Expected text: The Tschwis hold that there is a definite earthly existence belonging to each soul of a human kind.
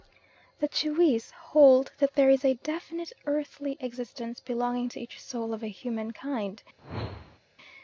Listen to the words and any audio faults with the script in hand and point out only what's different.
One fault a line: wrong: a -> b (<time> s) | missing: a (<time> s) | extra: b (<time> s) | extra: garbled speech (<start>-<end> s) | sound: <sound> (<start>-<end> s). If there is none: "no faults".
sound: whoosh (6.8-7.4 s)